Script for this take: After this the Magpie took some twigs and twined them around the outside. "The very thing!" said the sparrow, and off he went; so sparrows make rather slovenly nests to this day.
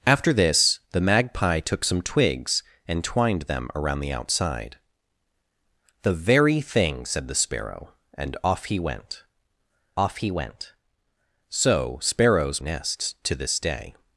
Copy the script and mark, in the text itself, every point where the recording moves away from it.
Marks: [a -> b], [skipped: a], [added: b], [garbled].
After this the Magpie took some twigs and twined them around the outside. "The very thing!" said the sparrow, and off he went; [so sparrows make rather slovenly -> off he went so sparrows] nests to this day.